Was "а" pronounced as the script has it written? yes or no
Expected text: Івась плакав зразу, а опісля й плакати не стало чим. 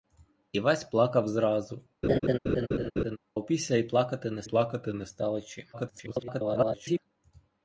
no